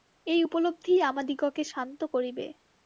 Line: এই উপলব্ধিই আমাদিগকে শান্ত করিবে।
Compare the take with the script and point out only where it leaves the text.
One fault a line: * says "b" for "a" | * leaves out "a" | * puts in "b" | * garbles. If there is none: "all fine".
all fine